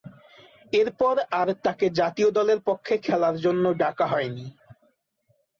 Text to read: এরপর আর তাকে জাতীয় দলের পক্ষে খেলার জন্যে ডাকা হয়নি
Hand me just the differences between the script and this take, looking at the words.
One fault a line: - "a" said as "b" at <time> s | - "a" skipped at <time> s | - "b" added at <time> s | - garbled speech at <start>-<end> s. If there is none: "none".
none